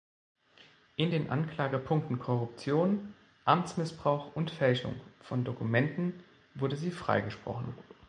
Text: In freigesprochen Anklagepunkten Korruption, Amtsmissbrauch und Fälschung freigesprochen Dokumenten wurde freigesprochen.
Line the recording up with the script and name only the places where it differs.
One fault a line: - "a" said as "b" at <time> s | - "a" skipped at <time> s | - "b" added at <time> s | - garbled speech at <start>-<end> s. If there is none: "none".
- "freigesprochen" said as "den" at 1.1 s
- "freigesprochen" said as "von" at 5.2 s
- "sie" added at 6.8 s